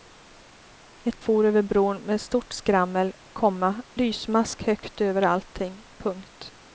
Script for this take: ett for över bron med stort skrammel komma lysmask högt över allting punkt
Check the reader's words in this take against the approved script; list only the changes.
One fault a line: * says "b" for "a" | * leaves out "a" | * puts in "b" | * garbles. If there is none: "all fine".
all fine